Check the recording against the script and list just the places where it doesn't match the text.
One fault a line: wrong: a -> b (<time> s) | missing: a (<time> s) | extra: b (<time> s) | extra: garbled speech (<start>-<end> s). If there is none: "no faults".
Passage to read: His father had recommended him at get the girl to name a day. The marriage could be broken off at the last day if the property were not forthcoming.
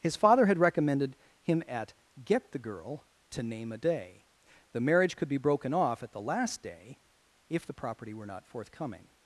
no faults